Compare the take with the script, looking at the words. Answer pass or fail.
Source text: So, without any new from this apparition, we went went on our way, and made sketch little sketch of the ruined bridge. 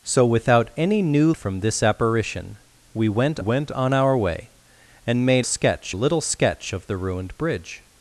pass